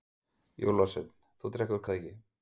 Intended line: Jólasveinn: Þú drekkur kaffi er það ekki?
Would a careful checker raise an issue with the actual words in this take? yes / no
yes